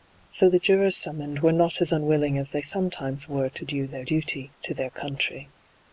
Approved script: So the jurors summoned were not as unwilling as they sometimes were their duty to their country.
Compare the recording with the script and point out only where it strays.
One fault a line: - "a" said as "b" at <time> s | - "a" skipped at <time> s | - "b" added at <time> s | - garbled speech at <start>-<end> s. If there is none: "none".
- "to do" added at 3.5 s